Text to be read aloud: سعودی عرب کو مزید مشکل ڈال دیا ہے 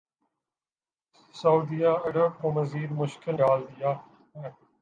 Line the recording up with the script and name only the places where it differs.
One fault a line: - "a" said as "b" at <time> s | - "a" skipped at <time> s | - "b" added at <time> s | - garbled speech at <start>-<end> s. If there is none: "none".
none